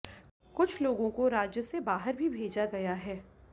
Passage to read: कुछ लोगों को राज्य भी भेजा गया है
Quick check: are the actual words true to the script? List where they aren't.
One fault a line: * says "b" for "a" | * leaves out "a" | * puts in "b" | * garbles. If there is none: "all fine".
* puts in "से बाहर"